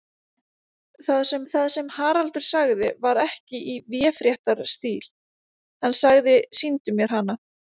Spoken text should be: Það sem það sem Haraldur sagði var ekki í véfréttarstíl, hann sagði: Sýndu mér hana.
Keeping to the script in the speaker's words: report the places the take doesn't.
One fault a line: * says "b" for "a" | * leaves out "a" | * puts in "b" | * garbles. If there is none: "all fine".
all fine